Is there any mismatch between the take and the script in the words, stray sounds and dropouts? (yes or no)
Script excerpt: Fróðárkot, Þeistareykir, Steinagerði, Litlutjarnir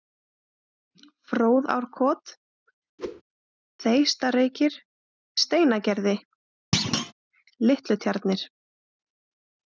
yes